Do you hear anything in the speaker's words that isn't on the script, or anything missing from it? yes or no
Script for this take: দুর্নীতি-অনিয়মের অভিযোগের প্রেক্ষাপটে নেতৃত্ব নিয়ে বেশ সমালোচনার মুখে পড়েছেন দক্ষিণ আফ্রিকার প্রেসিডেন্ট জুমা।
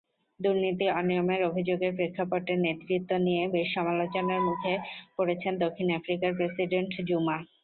no